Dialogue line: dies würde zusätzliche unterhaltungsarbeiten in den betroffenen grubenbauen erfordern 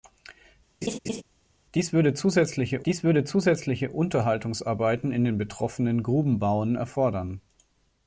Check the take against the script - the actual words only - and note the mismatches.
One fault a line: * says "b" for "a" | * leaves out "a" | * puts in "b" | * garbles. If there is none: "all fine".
* puts in "dies würde zusätzliche"